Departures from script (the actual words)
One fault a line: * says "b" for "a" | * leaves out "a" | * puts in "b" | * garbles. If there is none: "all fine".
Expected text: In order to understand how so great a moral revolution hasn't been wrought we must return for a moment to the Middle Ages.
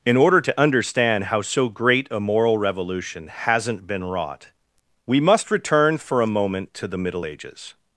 all fine